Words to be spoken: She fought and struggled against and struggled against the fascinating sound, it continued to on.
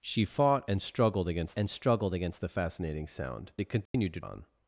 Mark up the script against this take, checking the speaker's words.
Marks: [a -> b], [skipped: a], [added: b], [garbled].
She fought and struggled against and struggled against the fascinating sound, it continued to on.